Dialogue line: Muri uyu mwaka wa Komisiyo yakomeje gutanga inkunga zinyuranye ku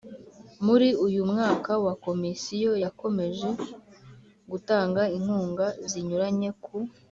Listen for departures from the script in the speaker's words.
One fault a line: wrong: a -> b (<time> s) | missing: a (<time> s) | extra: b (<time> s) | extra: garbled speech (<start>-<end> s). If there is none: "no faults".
no faults